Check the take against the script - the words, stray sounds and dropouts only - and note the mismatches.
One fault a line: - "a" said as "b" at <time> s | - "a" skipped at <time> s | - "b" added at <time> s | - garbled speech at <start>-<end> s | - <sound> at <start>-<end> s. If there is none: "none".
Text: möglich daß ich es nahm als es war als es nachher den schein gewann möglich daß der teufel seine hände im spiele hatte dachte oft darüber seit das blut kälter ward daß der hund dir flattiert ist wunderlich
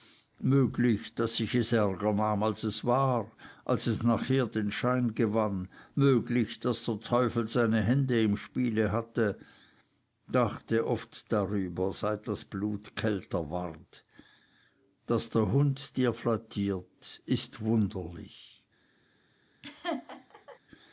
- "ärger" added at 1.7 s
- laugh at 19.6-20.6 s